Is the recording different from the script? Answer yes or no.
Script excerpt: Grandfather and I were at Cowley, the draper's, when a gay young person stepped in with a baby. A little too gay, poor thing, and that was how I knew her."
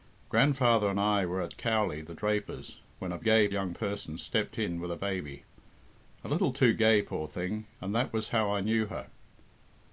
no